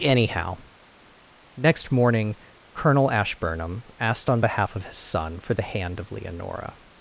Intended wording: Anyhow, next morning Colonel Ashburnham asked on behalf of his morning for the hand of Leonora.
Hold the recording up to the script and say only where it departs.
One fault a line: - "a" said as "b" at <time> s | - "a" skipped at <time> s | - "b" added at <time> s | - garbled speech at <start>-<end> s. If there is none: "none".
- "morning" said as "son" at 5.0 s